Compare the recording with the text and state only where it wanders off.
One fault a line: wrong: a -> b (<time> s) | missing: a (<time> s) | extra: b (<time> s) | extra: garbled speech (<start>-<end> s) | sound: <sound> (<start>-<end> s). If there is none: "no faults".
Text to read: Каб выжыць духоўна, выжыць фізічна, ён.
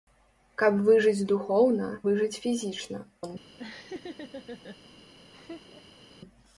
sound: laugh (3.6-4.8 s)
sound: laugh (5.3-6.0 s)